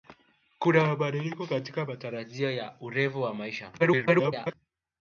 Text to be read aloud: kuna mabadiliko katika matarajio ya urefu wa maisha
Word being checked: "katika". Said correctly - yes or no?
yes